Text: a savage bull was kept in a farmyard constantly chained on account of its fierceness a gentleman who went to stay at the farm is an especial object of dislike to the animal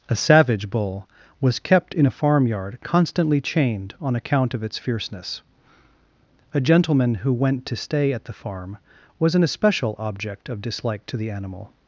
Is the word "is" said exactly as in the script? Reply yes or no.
no